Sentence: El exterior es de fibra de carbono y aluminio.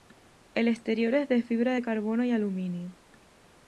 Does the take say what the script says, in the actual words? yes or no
yes